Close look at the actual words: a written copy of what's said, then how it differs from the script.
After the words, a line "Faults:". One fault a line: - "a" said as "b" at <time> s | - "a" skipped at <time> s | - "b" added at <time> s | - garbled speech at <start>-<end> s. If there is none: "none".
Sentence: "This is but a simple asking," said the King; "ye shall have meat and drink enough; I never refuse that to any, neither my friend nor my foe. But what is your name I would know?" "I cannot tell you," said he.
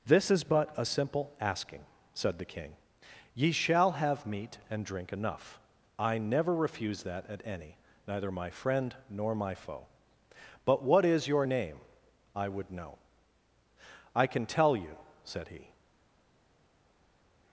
"This is but a simple asking," said the King; "ye shall have meat and drink enough; I never refuse that at any, neither my friend nor my foe. But what is your name I would know?" "I can tell you," said he.
Faults:
- "to" said as "at" at 7.3 s
- "cannot" said as "can" at 14.3 s